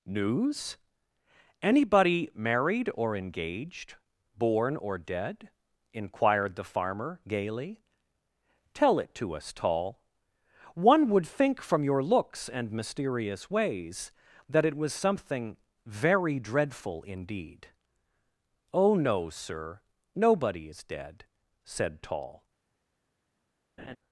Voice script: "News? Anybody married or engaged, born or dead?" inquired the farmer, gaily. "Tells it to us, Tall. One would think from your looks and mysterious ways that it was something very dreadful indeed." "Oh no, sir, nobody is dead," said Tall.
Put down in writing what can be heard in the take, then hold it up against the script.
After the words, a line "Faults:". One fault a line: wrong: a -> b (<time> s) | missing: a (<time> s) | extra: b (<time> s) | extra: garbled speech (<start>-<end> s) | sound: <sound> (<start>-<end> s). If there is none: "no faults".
"News? Anybody married or engaged, born or dead?" inquired the farmer, gaily. "Tell it to us, Tall. One would think from your looks and mysterious ways that it was something very dreadful indeed." "Oh no, sir, nobody is dead," said Tall.
Faults:
wrong: Tells -> Tell (8.7 s)
sound: laugh (23.8-24.0 s)